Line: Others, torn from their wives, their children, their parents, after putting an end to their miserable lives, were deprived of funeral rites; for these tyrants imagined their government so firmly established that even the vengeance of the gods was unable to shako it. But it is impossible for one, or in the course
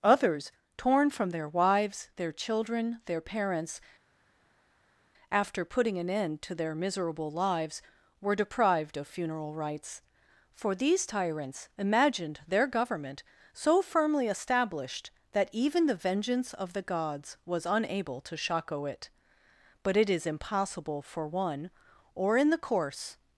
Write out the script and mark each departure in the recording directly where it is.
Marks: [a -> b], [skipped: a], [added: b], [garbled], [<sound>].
Others, torn from their wives, their children, their parents, after putting an end to their miserable lives, were deprived of funeral rites; for these tyrants imagined their government so firmly established that even the vengeance of the gods was unable to shako it. But it is impossible for one, or in the course